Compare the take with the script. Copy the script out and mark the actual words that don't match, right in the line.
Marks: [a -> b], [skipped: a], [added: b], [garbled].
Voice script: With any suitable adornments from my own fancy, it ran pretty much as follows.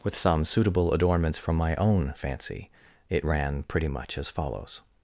With [any -> some] suitable adornments from my own fancy, it ran pretty much as follows.